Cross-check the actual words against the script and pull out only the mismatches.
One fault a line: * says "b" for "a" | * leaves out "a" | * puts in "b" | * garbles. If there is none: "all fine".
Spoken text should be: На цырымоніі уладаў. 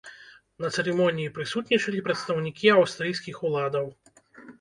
* puts in "прысутнічалі прадстаўнікі аўстрыйскіх"